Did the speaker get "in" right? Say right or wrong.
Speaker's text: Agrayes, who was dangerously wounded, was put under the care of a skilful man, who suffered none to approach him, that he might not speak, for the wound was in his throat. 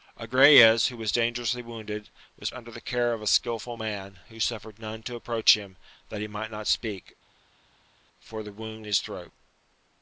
wrong